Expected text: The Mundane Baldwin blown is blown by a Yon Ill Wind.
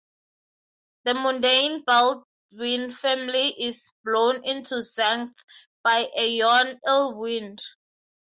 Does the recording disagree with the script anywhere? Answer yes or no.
yes